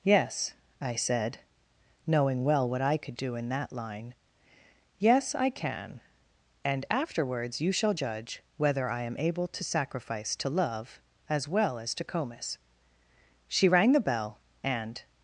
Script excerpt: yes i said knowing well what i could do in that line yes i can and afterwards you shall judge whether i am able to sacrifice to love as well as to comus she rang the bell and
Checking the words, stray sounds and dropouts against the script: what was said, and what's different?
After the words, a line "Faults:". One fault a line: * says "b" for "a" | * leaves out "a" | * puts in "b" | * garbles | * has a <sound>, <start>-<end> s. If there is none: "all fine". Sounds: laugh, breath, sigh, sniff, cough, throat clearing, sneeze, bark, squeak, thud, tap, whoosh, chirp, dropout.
yes i said knowing well what i could do in that line yes i can and afterwards you shall judge whether i am able to sacrifice to love as well as to comus she rang the bell and
Faults:
all fine